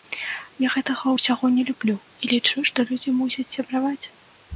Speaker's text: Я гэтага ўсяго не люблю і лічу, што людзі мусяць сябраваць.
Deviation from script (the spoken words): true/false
false